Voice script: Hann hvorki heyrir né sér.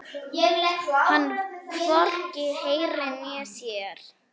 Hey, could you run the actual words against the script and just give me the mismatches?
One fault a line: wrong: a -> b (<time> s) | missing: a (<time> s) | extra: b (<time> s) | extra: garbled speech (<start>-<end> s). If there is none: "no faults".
no faults